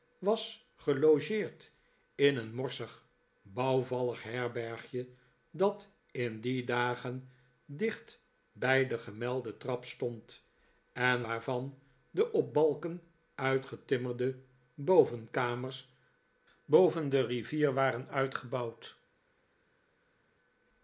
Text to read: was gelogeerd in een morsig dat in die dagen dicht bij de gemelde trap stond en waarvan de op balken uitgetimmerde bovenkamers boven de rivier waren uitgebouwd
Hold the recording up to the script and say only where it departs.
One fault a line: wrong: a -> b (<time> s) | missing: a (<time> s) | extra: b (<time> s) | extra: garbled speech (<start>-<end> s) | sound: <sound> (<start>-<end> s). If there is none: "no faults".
extra: bouwvallig herbergje (3.4 s)